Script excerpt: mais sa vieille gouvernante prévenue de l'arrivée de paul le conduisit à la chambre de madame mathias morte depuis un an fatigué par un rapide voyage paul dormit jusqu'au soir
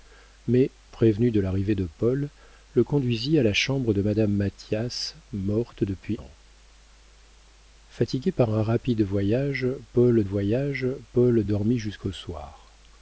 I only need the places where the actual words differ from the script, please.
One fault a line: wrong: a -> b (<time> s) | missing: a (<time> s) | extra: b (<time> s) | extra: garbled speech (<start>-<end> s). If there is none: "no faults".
missing: sa vieille gouvernante (0.7 s)
missing: un (6.2 s)
extra: voyage paul (10.2 s)